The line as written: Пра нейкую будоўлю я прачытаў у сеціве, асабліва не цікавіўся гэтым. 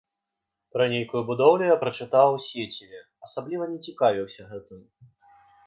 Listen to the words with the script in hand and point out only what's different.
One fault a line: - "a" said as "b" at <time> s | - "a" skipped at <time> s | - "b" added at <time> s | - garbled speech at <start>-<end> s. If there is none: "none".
none